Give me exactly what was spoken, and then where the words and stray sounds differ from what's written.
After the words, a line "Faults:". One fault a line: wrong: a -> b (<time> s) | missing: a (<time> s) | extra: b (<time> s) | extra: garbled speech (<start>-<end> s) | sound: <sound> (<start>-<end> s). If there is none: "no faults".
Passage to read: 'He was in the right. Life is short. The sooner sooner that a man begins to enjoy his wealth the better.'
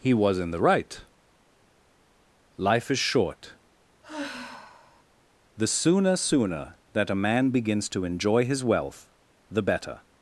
'He was in the right. Life is short. The sooner sooner that a man begins to enjoy his wealth the better.'
Faults:
sound: sigh (4.0-5.0 s)